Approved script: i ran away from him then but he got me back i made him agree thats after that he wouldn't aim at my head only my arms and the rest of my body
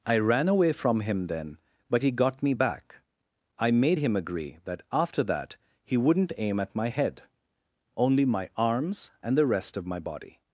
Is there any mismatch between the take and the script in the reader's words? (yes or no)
yes